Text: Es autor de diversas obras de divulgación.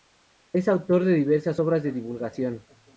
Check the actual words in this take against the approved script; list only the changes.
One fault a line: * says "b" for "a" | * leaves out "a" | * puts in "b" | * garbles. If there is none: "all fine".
all fine